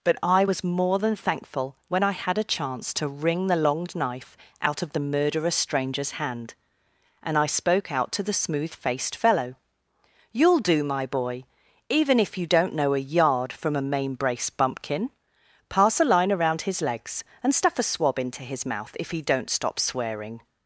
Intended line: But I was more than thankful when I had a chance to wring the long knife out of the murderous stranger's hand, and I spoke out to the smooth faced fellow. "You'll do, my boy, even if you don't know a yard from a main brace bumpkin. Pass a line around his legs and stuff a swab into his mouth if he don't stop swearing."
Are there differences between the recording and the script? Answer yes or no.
no